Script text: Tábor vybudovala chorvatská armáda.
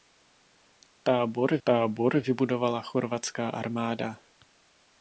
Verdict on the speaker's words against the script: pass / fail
fail